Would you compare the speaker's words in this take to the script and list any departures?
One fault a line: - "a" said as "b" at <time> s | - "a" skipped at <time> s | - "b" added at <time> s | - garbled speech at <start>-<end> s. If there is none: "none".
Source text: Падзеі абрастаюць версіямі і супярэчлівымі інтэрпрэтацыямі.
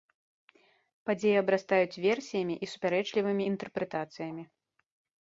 none